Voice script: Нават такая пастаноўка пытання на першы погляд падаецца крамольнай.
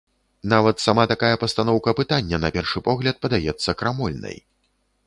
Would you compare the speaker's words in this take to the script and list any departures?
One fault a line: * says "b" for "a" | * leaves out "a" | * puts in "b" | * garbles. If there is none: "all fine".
* puts in "сама"